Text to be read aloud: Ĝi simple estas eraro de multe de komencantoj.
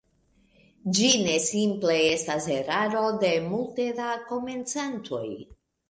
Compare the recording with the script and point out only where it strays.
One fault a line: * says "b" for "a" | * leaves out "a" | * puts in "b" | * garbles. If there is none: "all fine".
* puts in "ne"
* says "da" for "de"